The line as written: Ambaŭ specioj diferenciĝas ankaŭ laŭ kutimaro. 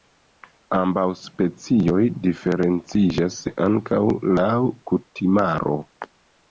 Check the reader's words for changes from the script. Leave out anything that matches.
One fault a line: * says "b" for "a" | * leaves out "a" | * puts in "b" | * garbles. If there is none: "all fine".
all fine